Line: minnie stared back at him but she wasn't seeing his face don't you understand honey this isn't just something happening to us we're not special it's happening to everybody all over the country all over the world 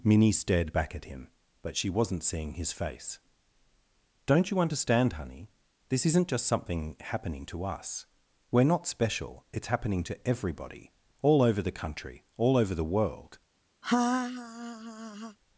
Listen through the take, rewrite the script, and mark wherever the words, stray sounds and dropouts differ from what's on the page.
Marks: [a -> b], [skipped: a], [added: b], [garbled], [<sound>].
minnie stared back at him but she wasn't seeing his face don't you understand honey this isn't just something happening to us we're not special it's happening to everybody all over the country all over the world [laugh]